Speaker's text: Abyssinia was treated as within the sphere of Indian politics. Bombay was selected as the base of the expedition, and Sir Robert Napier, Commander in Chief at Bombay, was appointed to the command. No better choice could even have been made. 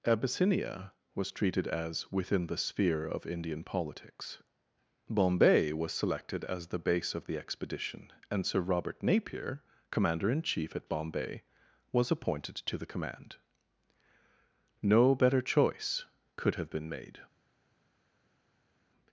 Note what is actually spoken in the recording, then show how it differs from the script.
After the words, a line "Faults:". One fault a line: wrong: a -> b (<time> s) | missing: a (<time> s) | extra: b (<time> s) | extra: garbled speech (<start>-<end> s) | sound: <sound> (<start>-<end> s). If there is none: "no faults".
Abyssinia was treated as within the sphere of Indian politics. Bombay was selected as the base of the expedition, and Sir Robert Napier, Commander in Chief at Bombay, was appointed to the command. No better choice could have been made.
Faults:
missing: even (16.5 s)